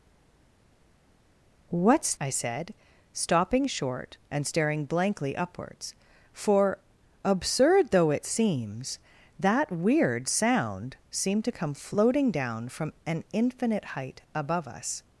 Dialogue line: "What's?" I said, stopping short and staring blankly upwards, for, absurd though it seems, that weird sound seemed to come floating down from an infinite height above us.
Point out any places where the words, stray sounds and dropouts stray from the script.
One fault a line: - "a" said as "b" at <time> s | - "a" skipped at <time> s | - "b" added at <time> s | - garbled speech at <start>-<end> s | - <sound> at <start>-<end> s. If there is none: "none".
none